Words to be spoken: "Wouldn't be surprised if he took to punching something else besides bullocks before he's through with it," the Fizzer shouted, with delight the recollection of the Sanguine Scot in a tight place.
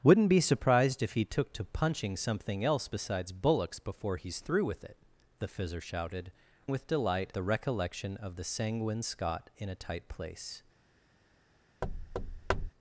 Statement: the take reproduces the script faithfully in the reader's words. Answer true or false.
true